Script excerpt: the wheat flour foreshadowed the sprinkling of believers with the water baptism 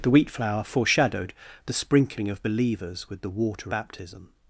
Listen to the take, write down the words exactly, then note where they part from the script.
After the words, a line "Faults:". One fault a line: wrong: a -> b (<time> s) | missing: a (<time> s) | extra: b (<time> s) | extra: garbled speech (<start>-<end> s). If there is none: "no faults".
the wheat flour foreshadowed the sprinkling of believers with the water baptism
Faults:
no faults